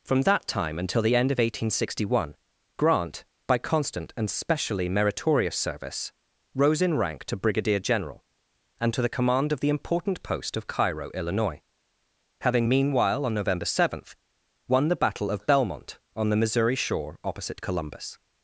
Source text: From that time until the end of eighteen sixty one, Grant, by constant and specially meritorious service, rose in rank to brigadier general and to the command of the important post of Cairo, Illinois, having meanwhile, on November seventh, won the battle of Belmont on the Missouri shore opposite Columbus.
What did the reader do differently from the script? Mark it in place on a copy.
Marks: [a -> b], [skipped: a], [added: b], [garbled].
From that time until the end of eighteen sixty one, Grant, by constant and specially meritorious service, rose in rank to brigadier general and to the command of the important post of Cairo, Illinois, having meanwhile, on November seventh, won the battle of Belmont on the Missouri shore opposite Columbus.